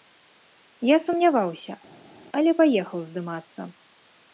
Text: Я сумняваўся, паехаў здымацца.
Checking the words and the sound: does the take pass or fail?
fail